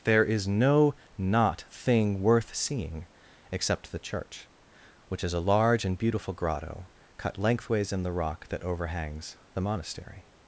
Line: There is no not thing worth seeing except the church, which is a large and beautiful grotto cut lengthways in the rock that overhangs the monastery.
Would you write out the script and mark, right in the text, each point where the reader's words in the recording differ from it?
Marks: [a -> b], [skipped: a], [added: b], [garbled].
There is no not thing worth seeing except the church, which is a large and beautiful grotto cut lengthways in the rock that overhangs the monastery.